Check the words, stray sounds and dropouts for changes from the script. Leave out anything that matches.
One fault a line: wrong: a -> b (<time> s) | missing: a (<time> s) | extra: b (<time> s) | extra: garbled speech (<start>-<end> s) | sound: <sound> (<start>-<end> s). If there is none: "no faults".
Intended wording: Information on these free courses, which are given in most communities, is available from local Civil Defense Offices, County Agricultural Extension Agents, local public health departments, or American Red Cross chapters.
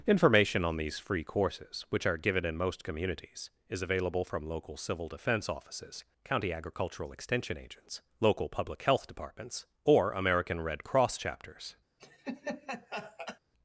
sound: laugh (12.0-13.4 s)